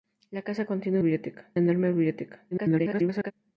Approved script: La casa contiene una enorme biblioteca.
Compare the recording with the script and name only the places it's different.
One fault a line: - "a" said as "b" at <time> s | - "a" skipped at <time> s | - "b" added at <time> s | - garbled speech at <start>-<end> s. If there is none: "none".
- "una" said as "biblioteca" at 1.0 s
- garbled speech at 2.5-3.3 s